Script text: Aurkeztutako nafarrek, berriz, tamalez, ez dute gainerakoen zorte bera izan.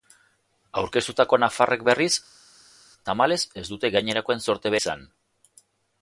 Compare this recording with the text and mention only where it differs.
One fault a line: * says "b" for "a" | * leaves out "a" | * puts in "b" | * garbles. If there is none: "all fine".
* leaves out "bera"